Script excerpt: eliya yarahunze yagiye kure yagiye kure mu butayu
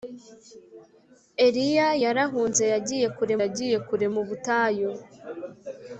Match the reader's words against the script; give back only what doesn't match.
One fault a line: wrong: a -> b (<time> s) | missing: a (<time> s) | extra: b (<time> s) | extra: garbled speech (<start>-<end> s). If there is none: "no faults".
no faults